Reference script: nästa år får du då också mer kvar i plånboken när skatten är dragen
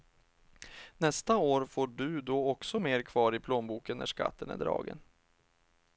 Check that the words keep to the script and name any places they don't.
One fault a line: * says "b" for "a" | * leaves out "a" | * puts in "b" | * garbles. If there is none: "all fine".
all fine